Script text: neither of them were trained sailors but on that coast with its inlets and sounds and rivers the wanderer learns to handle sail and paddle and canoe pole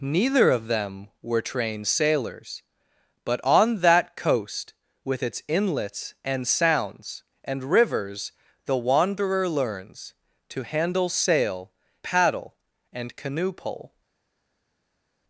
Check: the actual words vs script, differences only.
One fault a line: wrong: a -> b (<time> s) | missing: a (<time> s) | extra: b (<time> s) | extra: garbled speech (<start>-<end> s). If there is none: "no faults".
missing: and (11.7 s)